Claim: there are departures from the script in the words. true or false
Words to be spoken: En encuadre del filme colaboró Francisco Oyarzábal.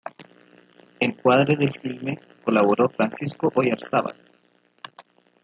false